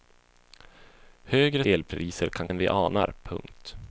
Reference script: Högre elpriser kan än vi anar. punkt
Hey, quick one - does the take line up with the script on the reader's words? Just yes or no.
yes